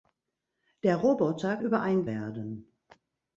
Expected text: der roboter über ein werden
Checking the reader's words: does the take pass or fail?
pass